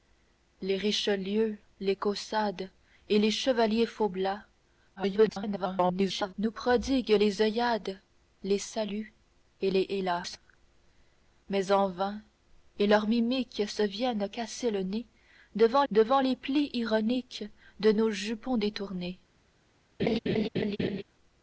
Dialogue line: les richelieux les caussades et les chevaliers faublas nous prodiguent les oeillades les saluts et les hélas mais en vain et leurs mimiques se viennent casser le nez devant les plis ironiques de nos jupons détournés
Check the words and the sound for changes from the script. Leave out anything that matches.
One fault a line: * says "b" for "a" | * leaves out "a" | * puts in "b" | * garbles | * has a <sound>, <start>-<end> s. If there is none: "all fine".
* garbles
* puts in "devant"
* has a laugh, 20.0-21.0 s